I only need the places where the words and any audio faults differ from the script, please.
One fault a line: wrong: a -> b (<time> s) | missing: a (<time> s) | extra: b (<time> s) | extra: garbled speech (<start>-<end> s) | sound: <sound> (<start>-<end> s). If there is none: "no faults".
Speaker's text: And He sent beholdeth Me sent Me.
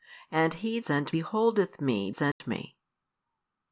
sound: dropout (2.3-2.4 s)